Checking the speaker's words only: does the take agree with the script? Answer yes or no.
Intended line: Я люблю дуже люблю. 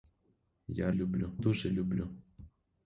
yes